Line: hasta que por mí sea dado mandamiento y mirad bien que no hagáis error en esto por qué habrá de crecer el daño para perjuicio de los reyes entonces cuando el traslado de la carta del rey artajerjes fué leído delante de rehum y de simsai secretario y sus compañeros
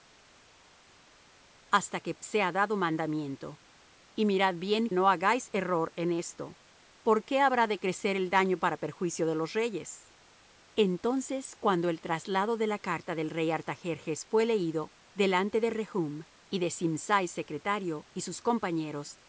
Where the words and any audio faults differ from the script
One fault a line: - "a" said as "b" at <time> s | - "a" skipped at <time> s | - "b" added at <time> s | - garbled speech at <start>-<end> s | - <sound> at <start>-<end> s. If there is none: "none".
- "por mí" skipped at 2.1 s
- "que" skipped at 4.9 s